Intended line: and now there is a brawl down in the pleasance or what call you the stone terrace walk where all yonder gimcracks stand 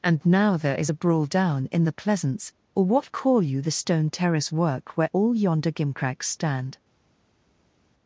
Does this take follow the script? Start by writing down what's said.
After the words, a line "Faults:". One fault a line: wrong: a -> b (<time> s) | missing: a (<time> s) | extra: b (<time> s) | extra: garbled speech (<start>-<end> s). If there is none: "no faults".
and now there is a brawl down in the pleasance or what call you the stone terrace work where all yonder gimcracks stand
Faults:
wrong: walk -> work (4.5 s)